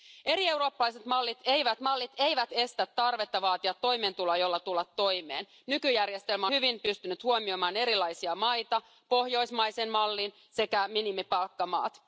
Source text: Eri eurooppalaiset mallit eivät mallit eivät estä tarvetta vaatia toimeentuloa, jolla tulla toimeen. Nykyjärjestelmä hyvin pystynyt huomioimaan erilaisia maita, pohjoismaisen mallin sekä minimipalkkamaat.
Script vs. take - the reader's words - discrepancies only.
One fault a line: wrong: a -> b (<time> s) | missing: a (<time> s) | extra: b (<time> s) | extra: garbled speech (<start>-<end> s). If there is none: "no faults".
no faults